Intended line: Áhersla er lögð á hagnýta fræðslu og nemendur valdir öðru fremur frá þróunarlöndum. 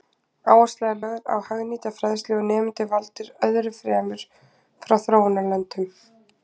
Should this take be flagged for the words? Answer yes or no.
no